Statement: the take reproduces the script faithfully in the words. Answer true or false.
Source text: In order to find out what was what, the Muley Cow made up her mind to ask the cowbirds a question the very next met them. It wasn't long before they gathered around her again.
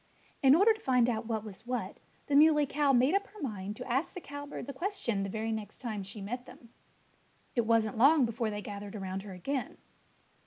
false